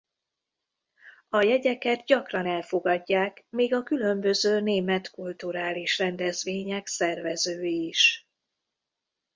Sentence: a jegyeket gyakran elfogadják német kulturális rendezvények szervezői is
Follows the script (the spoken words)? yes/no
no